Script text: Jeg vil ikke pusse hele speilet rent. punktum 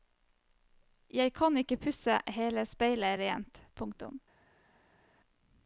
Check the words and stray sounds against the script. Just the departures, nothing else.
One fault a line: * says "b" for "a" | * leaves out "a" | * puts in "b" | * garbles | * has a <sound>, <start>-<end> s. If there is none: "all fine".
* says "kan" for "vil"